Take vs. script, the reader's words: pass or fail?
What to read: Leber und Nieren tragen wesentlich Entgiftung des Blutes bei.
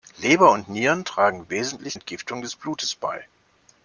pass